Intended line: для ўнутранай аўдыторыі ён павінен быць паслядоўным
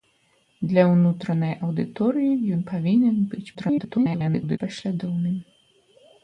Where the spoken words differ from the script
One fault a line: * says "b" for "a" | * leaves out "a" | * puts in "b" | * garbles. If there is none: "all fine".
* garbles